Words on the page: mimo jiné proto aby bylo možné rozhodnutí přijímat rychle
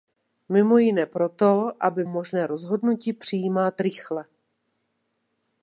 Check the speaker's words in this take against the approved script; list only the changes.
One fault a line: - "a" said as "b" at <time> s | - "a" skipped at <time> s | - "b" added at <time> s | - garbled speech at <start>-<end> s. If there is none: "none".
- "bylo" skipped at 2.0 s